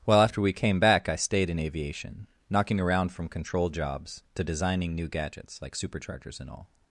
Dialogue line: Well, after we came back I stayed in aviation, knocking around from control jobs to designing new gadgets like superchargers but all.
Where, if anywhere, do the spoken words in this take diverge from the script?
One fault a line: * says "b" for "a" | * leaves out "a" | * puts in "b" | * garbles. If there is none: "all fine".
* says "and" for "but"